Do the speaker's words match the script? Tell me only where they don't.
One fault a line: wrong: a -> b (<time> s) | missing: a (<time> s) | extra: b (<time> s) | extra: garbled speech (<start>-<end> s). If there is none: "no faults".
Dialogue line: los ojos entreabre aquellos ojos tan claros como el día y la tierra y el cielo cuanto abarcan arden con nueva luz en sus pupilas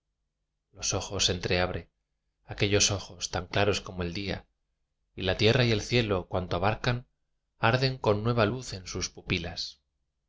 no faults